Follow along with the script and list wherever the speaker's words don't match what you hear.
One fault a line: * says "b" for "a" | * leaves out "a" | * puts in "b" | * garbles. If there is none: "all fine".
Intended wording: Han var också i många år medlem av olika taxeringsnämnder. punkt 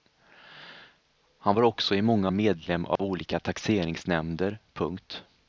* leaves out "år"